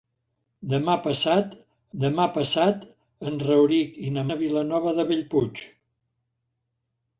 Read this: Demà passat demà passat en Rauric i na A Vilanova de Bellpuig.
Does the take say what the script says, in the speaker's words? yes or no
yes